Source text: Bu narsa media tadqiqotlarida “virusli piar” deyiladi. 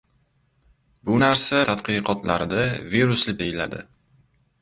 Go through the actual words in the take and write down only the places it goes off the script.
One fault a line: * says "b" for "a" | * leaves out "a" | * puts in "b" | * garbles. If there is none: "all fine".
* leaves out "media"
* leaves out "piar"